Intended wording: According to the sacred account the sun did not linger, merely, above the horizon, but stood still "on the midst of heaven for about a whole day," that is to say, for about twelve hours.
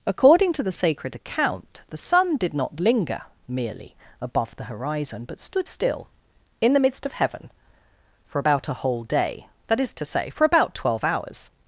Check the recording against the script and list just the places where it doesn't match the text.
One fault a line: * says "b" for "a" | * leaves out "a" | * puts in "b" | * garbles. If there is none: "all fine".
* says "in" for "on"